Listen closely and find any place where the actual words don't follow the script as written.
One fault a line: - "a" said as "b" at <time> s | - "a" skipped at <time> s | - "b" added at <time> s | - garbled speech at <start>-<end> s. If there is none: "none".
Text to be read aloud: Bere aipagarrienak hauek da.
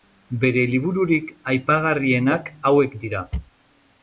- "libururik" added at 0.7 s
- "da" said as "dira" at 3.0 s